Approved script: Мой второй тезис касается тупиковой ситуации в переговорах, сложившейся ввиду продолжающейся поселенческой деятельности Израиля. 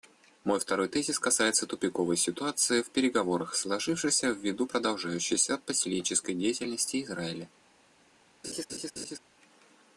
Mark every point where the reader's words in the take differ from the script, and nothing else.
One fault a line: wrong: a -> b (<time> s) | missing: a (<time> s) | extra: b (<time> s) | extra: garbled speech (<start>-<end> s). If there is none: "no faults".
no faults